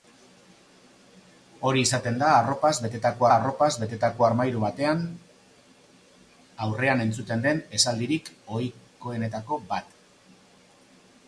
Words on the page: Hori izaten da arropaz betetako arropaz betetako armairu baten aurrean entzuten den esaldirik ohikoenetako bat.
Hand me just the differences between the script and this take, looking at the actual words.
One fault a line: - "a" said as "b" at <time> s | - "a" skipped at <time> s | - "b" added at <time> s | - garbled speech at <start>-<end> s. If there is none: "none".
none